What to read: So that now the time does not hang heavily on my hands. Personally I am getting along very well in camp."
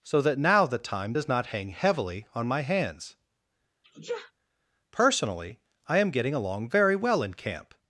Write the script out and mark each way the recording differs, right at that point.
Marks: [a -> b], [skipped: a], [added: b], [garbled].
So that now the time does not hang heavily on my hands. Personally I am getting along very well in camp."